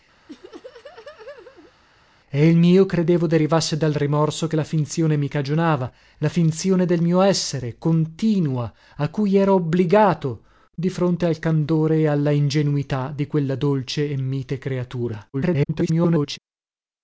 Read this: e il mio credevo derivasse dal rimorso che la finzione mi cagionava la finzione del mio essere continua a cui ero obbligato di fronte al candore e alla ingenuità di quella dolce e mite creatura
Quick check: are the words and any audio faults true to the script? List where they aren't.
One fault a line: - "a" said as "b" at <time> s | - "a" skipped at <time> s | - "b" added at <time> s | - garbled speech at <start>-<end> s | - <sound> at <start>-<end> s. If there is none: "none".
- laugh at 0.3-1.7 s
- garbled speech at 15.3-16.4 s